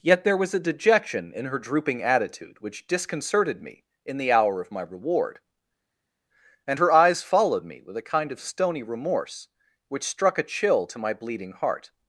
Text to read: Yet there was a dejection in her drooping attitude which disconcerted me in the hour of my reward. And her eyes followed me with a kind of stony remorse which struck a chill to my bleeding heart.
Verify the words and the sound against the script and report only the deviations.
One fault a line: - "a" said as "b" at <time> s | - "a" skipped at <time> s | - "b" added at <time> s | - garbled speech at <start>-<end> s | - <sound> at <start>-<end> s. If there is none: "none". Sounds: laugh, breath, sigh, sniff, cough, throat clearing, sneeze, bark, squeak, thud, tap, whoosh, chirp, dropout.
none